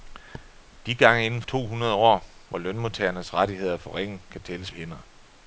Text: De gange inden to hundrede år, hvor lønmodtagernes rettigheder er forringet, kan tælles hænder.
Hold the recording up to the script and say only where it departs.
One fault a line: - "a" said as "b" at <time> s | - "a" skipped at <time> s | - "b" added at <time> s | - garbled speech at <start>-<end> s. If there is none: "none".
none